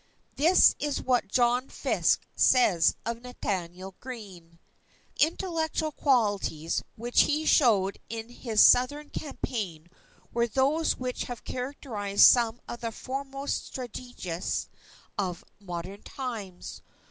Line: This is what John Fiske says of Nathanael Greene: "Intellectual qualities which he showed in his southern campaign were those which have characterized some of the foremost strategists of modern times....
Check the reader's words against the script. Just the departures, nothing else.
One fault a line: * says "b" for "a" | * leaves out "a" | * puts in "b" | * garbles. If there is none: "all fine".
all fine